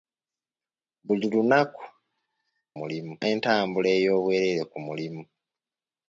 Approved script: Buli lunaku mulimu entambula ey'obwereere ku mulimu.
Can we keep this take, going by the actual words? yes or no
yes